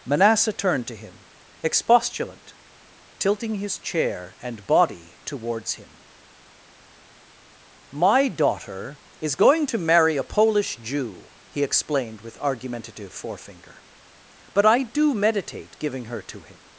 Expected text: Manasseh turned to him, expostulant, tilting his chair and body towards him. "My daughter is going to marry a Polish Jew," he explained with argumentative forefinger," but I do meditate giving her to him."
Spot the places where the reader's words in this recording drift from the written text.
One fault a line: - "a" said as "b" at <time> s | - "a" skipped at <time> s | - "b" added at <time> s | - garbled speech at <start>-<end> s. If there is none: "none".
none